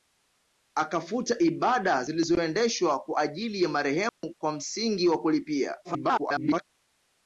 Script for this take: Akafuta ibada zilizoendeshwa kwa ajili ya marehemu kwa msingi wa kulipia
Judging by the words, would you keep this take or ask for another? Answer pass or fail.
fail